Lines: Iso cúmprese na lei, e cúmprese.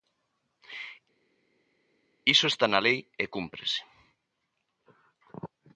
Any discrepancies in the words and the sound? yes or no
yes